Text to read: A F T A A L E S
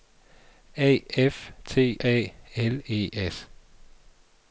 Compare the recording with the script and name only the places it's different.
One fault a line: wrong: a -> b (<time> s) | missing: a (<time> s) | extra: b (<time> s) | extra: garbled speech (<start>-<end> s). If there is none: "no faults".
missing: A (2.3 s)